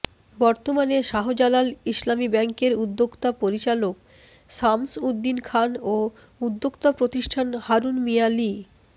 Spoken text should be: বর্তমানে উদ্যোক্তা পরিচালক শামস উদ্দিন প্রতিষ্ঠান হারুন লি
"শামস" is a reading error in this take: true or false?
false